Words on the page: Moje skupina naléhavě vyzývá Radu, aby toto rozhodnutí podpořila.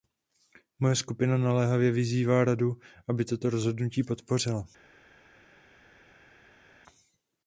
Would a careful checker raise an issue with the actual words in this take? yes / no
no